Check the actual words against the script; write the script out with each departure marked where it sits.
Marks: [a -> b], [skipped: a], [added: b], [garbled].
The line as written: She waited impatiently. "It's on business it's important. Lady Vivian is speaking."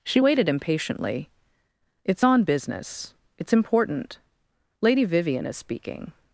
She waited impatiently. "It's on business it's important. Lady Vivian is speaking."